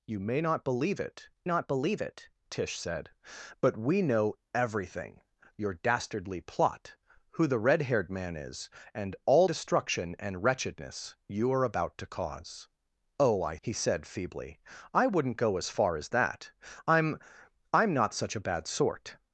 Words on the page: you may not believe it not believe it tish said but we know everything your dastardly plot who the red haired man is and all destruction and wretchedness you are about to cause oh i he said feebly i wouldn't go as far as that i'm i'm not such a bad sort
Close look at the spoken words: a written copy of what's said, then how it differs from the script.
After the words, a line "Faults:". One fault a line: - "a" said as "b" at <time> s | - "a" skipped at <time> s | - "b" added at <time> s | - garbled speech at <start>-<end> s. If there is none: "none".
you may not believe it not believe it tish said but we know everything your dastardly plot who the red haired man is and all destruction and wretchedness you are about to cause oh i he said feebly i wouldn't go as far as that i'm i'm not such a bad sort
Faults:
none